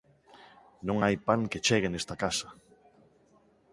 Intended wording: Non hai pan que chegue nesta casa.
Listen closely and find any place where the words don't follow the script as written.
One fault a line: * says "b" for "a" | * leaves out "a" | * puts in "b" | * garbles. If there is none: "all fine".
all fine